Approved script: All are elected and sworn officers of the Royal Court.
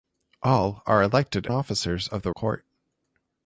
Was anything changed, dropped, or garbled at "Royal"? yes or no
yes